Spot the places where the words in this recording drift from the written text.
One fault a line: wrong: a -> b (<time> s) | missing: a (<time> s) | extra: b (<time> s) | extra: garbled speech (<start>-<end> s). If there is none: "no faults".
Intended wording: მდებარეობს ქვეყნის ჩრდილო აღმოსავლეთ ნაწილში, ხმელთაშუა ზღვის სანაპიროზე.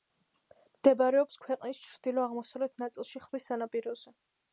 missing: ხმელთაშუა (3.2 s)